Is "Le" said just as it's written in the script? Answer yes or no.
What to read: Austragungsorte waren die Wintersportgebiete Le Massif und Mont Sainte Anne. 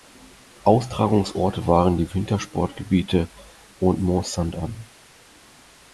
no